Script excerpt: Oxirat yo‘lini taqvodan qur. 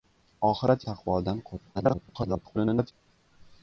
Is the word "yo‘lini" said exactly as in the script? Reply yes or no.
no